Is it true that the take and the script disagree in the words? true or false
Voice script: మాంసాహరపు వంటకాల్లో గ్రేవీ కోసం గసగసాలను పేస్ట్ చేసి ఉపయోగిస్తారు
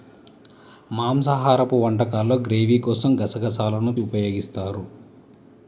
true